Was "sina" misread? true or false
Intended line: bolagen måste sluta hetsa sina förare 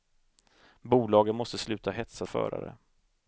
true